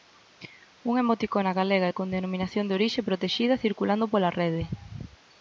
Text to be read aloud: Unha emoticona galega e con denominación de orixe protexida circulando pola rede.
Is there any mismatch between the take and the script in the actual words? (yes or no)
no